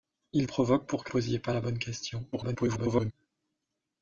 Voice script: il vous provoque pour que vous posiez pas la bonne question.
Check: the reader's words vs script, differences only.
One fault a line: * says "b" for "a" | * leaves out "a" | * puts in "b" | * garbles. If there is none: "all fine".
* leaves out "vous"
* leaves out "vous"
* garbles